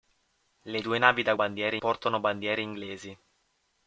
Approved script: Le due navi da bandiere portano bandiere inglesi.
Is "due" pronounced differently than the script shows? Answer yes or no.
no